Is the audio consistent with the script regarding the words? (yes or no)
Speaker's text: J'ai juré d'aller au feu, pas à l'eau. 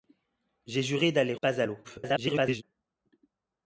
no